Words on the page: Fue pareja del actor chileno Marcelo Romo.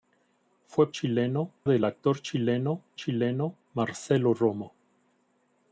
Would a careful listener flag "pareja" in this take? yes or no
yes